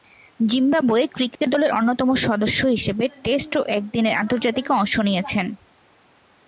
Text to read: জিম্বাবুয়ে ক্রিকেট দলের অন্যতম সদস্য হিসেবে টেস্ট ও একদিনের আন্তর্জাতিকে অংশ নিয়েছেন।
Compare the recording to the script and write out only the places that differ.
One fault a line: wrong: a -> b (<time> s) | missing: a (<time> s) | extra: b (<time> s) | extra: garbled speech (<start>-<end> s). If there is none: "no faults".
no faults